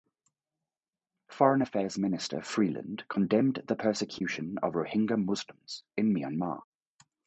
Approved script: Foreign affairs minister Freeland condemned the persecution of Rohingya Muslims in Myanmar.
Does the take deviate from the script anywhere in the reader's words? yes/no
no